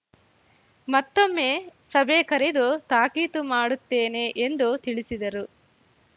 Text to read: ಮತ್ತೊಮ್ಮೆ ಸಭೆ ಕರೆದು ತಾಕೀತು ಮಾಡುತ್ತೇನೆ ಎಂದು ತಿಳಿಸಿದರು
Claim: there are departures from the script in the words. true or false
false